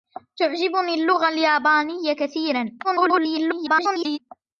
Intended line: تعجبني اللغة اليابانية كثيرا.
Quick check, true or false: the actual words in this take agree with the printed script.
false